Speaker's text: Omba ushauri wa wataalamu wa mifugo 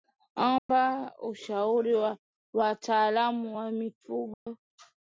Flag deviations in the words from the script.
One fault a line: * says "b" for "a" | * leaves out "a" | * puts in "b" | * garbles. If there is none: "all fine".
all fine